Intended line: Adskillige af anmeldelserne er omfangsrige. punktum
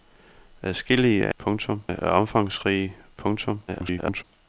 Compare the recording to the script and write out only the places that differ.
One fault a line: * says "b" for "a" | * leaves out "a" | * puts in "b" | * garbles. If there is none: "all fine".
* says "punktum" for "anmeldelserne"
* garbles